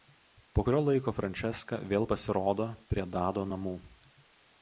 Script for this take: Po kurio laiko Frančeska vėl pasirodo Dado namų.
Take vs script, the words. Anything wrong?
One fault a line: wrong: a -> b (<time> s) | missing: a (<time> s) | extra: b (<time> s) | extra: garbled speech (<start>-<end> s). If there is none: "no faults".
extra: prie (2.9 s)